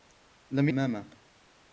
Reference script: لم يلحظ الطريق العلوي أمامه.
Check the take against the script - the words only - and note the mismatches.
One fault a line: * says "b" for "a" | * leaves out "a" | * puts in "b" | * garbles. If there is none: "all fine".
* leaves out "يلحظ الطريق العلوي"